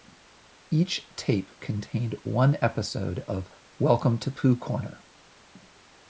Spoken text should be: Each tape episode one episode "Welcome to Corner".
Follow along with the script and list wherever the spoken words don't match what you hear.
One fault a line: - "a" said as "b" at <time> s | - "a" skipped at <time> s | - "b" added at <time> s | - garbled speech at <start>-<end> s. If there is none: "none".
- "episode" said as "contained" at 1.6 s
- "of" added at 3.2 s
- "Pooh" added at 4.3 s